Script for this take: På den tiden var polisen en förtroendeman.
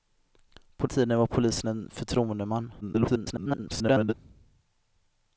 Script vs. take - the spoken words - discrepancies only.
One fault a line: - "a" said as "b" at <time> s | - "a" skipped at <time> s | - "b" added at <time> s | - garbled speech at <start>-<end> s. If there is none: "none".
- "den" skipped at 0.9 s
- garbled speech at 2.8-4.1 s